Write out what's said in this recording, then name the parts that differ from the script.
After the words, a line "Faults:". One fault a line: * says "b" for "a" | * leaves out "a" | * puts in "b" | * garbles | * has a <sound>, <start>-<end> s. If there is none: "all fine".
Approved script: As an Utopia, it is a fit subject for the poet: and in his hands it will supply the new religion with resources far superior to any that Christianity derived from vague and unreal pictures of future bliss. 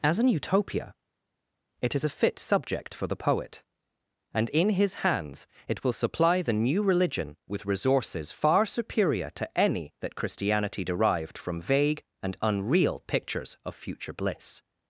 As an Utopia, it is a fit subject for the poet: and in his hands it will supply the new religion with resources far superior to any that Christianity derived from vague and unreal pictures of future bliss.
Faults:
all fine